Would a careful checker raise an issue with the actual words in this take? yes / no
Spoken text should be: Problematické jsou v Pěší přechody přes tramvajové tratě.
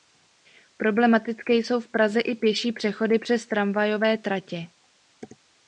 yes